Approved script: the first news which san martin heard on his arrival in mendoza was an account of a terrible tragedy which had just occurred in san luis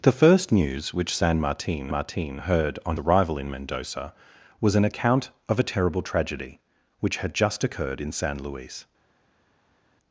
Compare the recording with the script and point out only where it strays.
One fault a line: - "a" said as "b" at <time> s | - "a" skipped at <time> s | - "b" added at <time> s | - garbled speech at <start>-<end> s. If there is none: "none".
- "martin" added at 1.9 s
- "his" skipped at 3.0 s